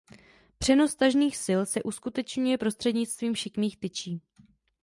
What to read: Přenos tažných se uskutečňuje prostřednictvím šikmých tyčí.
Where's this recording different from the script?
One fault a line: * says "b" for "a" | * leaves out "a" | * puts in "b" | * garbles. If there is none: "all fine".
* puts in "sil"